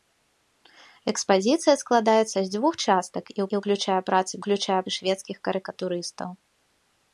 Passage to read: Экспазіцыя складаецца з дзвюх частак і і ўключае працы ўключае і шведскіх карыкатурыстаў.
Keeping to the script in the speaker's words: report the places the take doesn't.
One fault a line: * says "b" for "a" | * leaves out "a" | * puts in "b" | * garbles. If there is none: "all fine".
all fine